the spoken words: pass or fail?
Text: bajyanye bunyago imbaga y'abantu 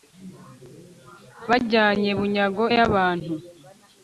fail